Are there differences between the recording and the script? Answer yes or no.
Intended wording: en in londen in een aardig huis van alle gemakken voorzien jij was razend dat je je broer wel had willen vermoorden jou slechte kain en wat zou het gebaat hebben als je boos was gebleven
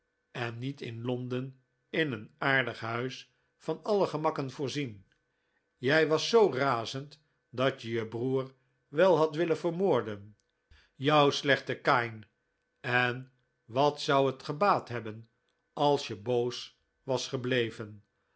yes